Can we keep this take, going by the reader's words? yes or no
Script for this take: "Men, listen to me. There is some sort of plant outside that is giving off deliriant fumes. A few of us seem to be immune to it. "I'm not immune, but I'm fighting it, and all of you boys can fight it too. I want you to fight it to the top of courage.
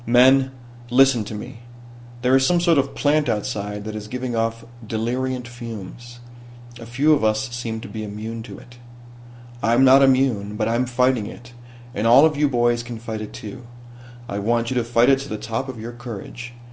no